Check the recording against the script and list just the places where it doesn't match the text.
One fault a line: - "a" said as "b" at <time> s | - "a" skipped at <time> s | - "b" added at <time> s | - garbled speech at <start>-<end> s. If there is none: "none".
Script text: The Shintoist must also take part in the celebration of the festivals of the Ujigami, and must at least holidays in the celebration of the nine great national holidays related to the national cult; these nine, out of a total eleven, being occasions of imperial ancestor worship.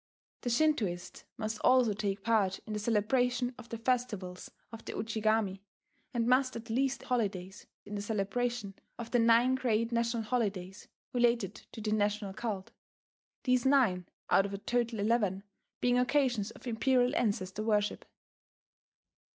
none